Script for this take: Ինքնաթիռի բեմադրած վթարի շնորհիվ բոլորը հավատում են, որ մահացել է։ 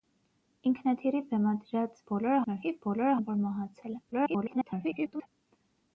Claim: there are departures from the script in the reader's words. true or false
true